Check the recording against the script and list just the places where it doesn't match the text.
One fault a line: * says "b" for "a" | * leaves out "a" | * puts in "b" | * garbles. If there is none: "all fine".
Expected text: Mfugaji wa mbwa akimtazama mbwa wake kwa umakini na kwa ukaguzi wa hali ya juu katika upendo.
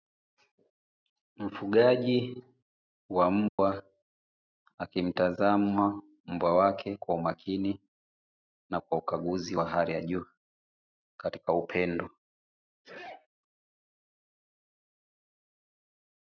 all fine